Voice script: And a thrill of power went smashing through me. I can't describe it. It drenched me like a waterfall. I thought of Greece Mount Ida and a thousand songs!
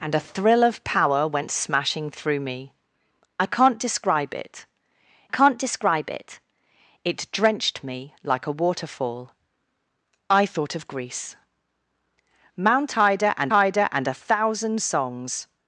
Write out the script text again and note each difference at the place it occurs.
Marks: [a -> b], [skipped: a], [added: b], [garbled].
And a thrill of power went smashing through me. I can't describe it. [added: can't describe] It [added: It] drenched me like a waterfall. I thought of Greece Mount Ida and [added: Ida and] a thousand songs!